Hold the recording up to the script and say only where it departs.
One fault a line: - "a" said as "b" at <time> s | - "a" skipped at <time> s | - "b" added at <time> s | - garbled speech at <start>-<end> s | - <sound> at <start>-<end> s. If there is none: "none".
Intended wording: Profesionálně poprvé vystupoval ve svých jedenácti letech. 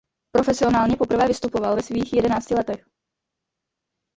none